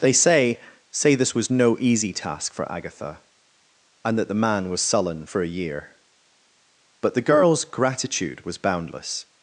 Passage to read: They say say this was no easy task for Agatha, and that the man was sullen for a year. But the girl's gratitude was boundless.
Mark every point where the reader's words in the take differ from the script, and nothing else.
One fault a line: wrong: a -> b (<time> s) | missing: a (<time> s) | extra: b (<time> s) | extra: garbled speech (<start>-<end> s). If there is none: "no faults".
no faults